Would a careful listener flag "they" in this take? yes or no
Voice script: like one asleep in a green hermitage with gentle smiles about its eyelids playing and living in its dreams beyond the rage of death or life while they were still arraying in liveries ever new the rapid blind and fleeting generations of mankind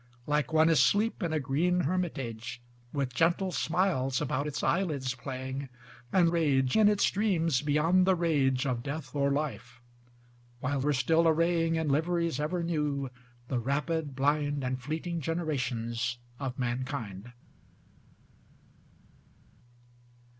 yes